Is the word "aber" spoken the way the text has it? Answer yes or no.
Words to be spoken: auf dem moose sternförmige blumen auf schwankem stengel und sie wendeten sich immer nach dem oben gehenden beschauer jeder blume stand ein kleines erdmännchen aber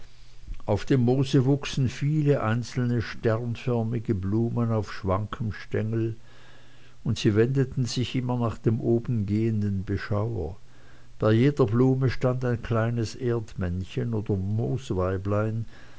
no